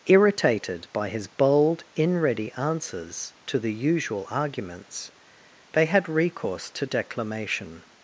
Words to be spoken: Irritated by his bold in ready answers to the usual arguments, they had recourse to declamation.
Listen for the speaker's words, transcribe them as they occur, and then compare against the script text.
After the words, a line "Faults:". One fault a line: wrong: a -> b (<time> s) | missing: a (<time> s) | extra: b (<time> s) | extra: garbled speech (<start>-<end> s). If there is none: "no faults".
Irritated by his bold in ready answers to the usual arguments, they had recourse to declamation.
Faults:
no faults